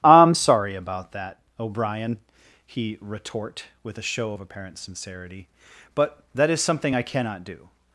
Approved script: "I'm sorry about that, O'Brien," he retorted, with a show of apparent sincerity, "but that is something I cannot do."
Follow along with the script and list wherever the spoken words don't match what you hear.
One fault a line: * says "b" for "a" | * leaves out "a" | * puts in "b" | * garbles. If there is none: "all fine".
* says "retort" for "retorted"